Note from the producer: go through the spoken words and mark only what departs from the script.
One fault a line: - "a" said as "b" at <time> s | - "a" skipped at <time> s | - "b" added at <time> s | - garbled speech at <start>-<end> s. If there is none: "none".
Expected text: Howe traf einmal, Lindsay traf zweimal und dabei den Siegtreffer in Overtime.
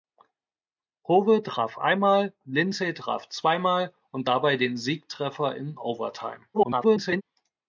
- garbled speech at 6.5-7.2 s